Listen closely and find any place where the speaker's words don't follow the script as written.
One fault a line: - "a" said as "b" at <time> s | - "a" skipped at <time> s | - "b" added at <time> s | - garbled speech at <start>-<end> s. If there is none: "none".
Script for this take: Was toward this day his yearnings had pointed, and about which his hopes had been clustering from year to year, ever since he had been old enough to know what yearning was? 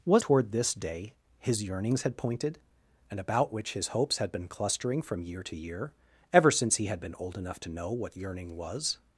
none